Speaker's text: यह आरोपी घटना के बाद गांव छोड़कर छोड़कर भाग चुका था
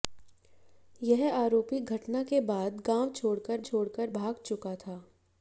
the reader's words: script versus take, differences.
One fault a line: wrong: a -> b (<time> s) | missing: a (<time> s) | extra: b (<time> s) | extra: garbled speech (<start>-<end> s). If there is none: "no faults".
no faults